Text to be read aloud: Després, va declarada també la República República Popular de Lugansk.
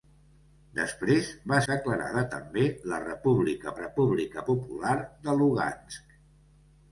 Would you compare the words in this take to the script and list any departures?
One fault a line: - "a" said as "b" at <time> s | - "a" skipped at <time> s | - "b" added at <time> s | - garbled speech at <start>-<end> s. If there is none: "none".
none